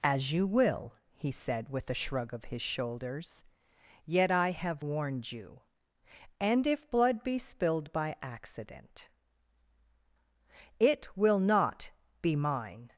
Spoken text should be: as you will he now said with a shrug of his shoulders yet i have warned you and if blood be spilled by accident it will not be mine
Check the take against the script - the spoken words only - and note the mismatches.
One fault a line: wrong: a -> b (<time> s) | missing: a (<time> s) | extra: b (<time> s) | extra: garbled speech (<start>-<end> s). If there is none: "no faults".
missing: now (1.3 s)